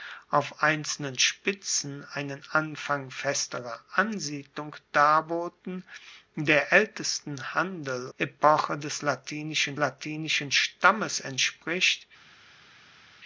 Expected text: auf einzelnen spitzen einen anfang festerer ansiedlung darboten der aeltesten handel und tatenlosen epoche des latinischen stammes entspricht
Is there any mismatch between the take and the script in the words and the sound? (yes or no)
yes